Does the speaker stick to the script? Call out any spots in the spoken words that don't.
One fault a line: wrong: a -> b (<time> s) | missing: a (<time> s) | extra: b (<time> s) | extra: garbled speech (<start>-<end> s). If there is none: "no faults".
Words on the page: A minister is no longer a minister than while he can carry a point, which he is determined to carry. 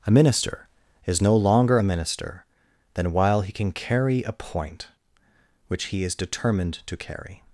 no faults